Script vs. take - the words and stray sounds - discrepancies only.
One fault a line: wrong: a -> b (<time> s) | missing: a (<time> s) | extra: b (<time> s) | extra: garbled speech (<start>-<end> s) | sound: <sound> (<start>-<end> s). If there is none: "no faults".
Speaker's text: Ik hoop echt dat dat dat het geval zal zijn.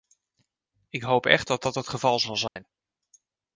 missing: dat (1.7 s)
sound: dropout (2.5-2.6 s)